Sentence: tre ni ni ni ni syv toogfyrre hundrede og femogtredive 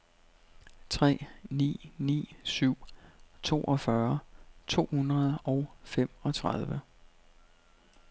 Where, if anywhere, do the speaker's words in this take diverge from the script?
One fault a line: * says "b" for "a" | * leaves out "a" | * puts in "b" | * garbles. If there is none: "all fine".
* leaves out "ni ni"
* puts in "to"